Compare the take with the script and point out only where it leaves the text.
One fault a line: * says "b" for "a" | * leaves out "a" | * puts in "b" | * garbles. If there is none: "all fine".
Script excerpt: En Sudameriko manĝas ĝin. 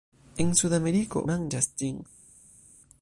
all fine